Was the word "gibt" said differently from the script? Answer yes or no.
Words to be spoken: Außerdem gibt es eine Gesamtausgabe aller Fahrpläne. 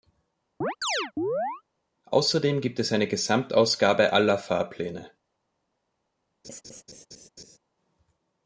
no